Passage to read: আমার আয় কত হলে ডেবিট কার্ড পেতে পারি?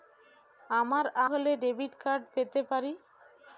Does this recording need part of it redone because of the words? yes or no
yes